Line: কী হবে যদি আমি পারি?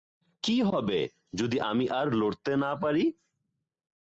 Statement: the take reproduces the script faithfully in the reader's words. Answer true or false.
false